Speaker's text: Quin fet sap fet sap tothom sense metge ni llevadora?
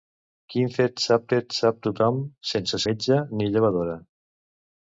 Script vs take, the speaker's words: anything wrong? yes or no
no